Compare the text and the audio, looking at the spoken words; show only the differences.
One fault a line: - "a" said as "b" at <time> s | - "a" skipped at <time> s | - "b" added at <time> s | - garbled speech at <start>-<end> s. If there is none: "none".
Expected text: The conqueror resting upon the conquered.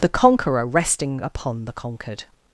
none